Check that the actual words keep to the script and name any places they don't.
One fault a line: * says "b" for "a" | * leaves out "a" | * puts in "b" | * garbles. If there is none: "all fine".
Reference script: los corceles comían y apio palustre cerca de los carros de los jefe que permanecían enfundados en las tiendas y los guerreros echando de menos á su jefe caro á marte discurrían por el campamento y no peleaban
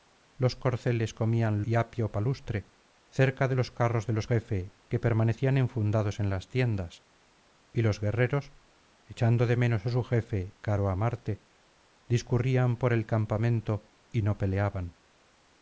all fine